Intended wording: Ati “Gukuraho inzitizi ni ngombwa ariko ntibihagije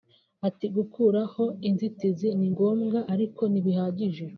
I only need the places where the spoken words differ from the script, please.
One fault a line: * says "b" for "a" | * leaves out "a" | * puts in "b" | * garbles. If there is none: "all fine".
all fine